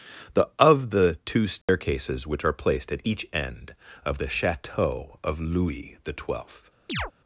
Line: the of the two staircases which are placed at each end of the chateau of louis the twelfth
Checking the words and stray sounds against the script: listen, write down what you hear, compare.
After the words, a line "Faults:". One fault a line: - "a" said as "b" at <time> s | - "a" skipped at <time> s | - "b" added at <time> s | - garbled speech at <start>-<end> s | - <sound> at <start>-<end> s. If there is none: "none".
the of the two staircases which are placed at each end of the chateau of louis the twelfth
Faults:
- dropout at 1.6-1.7 s
- chirp at 6.9-7.1 s